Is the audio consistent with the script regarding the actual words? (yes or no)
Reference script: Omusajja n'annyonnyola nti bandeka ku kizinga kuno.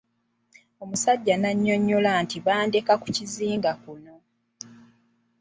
yes